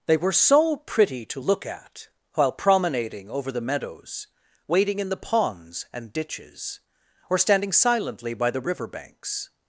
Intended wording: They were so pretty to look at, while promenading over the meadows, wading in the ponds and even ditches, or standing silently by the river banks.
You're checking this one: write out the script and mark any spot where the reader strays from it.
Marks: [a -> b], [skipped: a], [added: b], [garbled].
They were so pretty to look at, while promenading over the meadows, wading in the ponds and [skipped: even] ditches, or standing silently by the river banks.